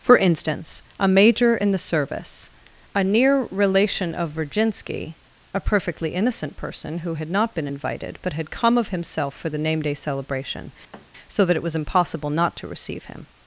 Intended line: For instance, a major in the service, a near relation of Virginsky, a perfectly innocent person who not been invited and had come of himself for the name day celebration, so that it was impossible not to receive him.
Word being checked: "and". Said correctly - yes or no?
no